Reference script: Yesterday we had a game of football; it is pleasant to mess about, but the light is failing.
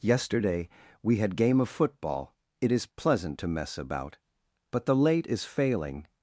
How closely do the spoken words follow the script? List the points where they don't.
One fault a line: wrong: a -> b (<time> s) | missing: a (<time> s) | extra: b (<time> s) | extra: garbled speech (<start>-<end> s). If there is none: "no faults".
missing: a (1.4 s)
wrong: light -> late (4.9 s)